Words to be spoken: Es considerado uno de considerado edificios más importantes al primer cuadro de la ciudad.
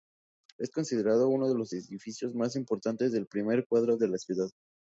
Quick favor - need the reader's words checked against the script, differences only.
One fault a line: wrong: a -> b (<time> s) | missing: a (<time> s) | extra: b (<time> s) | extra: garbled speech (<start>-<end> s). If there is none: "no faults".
wrong: considerado -> los (1.5 s)
wrong: al -> del (3.1 s)